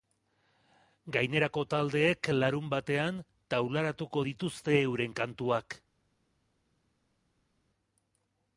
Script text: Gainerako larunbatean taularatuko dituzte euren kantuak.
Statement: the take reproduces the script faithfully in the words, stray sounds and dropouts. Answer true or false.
false